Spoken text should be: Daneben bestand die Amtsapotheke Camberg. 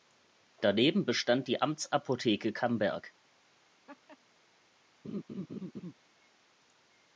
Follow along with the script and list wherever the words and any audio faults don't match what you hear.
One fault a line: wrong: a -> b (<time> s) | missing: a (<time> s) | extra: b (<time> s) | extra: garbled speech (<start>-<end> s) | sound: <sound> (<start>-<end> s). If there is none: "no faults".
sound: laugh (3.9-4.2 s)
sound: laugh (5.0-5.9 s)